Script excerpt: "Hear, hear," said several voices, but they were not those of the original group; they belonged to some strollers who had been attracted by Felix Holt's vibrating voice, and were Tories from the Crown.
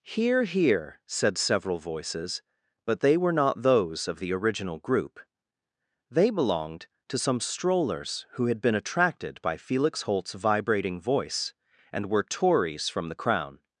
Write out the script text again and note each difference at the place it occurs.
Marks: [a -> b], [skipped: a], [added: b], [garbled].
"Hear, hear," said several voices, but they were not those of the original group; they belonged to some strollers who had been attracted by Felix Holt's vibrating voice, and were Tories from the Crown.